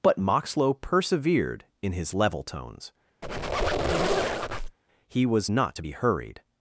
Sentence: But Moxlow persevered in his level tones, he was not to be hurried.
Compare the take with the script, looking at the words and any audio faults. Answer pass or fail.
fail